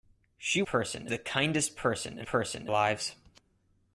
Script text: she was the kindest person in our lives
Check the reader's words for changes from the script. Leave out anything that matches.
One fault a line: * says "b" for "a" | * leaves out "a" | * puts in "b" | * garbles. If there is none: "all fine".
* says "person" for "was"
* says "person" for "our"